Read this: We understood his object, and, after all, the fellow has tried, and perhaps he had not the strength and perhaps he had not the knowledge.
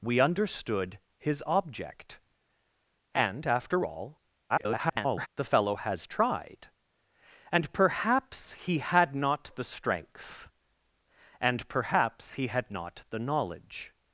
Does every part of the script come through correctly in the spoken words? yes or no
no